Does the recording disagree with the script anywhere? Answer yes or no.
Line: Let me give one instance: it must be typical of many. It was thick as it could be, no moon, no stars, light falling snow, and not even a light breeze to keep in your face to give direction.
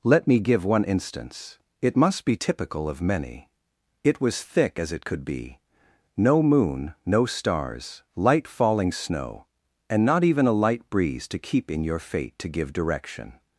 yes